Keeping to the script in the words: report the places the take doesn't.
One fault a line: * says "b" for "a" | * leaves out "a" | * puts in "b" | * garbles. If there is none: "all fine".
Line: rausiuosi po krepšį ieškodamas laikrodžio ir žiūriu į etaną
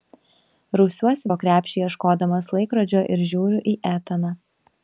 all fine